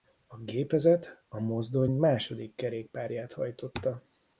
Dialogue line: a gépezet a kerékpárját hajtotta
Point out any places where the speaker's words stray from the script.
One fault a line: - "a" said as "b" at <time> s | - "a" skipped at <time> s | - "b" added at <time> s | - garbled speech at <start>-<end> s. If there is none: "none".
- "mozdony második" added at 1.4 s